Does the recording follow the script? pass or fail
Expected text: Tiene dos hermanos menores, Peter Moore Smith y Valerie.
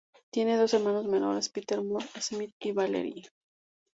pass